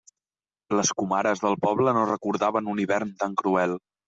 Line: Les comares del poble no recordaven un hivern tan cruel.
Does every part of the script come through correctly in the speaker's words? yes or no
yes